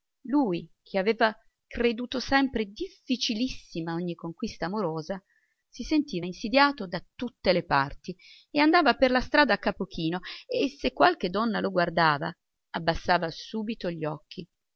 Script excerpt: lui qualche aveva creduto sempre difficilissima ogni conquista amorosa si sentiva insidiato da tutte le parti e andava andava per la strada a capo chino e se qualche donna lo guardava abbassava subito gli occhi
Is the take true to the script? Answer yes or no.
no